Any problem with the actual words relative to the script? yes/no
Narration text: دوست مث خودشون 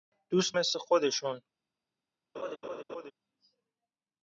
no